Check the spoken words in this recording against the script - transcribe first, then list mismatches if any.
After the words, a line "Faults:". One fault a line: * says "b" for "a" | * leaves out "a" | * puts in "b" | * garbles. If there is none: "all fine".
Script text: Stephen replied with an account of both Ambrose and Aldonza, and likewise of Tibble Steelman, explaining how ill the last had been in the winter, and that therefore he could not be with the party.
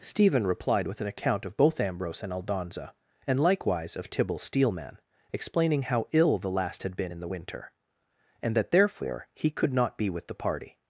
Stephen replied with an account of both Ambrose and Aldonza, and likewise of Tibble Steelman, explaining how ill the last had been in the winter, and that therefore he could not be with the party.
Faults:
all fine